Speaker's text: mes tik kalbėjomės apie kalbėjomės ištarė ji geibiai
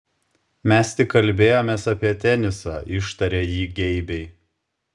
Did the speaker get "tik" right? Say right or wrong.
right